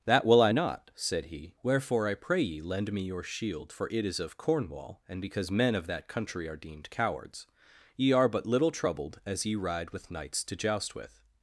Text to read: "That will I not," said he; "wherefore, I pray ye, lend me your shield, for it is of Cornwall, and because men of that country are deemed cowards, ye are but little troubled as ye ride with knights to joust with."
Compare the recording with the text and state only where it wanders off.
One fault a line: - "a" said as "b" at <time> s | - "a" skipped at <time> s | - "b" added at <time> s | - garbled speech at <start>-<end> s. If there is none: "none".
none